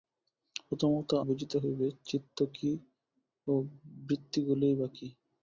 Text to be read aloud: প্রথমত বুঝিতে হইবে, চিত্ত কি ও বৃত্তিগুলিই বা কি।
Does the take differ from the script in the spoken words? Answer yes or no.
no